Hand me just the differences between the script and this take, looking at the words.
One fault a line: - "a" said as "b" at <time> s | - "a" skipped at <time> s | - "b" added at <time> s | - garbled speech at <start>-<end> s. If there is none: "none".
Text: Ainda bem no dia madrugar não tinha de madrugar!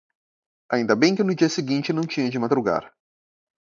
- "que" added at 1.1 s
- "madrugar" said as "seguinte" at 1.5 s